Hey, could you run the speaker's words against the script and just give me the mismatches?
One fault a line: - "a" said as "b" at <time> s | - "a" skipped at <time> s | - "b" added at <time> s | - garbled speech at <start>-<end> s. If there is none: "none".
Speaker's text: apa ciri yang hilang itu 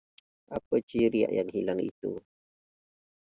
none